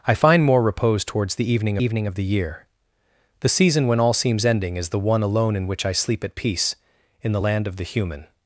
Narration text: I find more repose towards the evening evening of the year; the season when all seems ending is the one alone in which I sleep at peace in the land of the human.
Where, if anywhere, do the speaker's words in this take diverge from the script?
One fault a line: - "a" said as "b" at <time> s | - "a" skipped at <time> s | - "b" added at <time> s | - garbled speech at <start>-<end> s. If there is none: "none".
none